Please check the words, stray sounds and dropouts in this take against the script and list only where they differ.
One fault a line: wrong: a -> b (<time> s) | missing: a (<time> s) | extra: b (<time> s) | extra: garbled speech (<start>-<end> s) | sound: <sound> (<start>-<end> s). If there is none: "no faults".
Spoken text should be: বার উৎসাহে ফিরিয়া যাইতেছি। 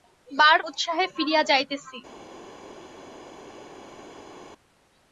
no faults